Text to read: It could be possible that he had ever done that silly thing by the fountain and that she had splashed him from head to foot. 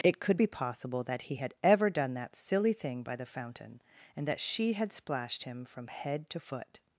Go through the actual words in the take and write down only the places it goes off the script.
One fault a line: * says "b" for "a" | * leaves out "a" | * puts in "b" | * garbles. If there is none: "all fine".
all fine